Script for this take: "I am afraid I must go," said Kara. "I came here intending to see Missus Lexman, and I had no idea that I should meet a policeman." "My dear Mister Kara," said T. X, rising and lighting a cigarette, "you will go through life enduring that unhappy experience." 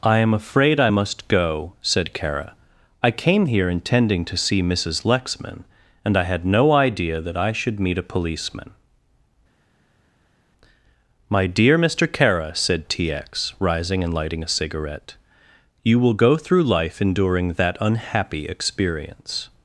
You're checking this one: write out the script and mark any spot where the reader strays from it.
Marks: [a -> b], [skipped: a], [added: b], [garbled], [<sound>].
"I am afraid I must go," said Kara. "I came here intending to see Missus Lexman, and I had no idea that I should meet a policeman." "My dear Mister Kara," said T. X, rising and lighting a cigarette, "you will go through life enduring that unhappy experience."